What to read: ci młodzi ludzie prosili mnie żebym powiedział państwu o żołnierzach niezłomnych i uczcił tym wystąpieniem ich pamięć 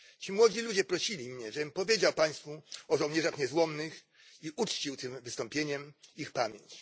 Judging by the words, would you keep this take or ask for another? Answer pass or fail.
pass